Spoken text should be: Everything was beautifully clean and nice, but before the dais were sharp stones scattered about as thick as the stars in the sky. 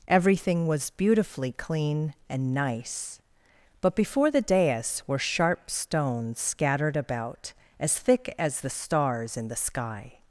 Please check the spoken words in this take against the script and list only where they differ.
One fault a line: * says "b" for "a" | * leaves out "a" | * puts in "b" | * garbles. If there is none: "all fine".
all fine